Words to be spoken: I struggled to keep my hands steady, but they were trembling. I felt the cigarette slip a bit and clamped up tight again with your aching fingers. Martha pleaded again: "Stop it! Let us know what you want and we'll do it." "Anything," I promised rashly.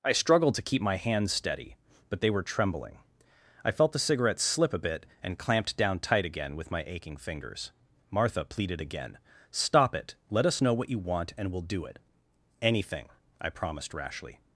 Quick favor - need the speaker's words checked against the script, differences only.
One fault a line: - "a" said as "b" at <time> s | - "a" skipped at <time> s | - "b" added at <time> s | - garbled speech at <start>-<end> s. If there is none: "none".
- "up" said as "down" at 5.8 s
- "your" said as "my" at 6.7 s